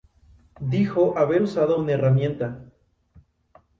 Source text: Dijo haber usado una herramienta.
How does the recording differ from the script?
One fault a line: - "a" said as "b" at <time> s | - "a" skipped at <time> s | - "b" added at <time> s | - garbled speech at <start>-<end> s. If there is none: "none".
none